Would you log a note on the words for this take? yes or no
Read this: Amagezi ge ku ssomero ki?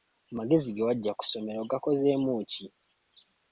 yes